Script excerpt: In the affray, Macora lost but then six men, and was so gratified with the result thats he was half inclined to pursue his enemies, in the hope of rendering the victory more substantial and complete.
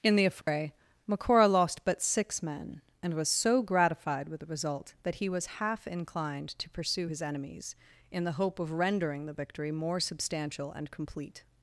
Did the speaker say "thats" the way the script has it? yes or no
no